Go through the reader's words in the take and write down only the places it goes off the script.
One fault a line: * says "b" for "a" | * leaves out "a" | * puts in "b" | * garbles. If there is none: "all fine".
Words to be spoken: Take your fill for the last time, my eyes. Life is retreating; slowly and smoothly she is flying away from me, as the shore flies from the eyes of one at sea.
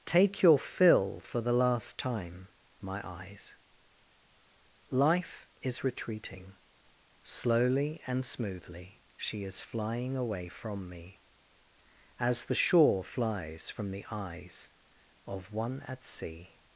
all fine